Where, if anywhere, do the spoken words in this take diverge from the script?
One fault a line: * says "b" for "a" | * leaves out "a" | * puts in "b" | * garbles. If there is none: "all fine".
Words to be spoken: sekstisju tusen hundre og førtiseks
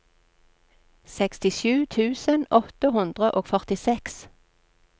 * puts in "åtte"